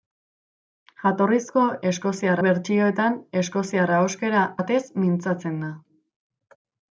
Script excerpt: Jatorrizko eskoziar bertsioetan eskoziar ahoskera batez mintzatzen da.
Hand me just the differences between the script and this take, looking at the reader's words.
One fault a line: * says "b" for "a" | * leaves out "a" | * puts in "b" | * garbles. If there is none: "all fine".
all fine